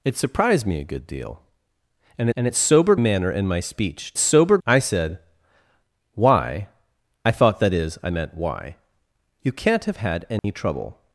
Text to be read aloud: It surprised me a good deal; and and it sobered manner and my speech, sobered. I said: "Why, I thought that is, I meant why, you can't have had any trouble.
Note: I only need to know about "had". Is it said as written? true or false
true